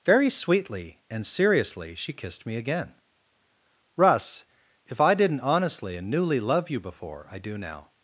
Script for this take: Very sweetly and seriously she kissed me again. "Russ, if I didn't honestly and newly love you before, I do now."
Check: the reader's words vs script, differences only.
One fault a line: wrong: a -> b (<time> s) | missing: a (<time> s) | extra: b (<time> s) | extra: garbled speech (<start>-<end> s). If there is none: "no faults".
no faults